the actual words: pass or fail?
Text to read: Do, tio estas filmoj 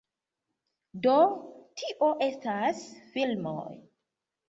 pass